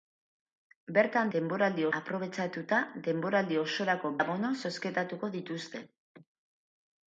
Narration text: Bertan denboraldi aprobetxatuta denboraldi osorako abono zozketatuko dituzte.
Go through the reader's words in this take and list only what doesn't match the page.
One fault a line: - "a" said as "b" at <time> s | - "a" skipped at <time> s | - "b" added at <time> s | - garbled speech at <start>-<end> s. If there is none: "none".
none